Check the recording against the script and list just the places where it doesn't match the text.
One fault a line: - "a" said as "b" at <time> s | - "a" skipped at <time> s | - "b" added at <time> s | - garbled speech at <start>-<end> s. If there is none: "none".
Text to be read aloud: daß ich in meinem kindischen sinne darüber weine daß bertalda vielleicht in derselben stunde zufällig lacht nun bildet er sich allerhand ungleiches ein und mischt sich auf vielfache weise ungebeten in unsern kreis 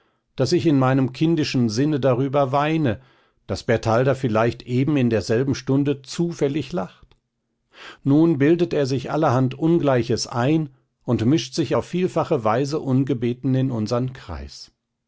- "eben" added at 4.6 s